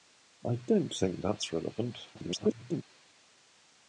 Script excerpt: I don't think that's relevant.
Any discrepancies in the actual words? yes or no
yes